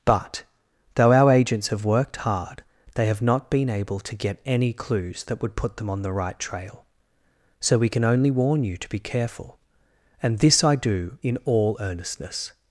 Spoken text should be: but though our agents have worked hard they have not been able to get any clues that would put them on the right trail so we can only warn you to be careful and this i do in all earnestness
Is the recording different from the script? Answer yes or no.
no